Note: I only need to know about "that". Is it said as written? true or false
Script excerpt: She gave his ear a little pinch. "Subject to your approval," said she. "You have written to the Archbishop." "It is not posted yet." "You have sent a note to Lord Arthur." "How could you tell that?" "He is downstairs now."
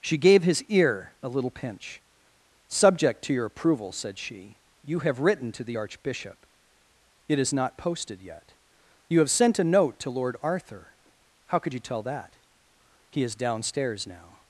true